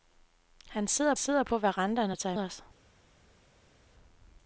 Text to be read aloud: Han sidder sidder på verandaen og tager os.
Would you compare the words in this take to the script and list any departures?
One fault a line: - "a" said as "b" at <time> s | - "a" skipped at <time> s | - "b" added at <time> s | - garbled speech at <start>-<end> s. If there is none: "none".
none